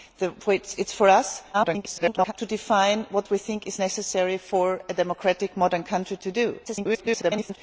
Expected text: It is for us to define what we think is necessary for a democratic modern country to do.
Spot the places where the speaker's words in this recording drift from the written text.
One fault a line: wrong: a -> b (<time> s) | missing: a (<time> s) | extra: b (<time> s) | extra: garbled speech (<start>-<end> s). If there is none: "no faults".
extra: garbled speech (1.5-2.3 s)
extra: garbled speech (6.7-7.6 s)